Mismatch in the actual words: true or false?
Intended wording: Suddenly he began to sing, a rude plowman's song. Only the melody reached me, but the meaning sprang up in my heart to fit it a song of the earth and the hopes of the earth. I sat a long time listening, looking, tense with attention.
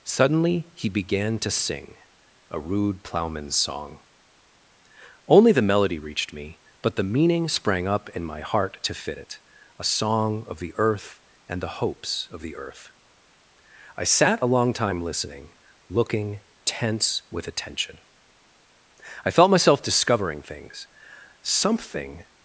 true